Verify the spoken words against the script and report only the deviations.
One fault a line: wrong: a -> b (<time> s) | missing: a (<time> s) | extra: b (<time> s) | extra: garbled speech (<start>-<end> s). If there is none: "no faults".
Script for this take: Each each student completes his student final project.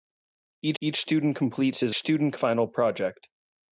no faults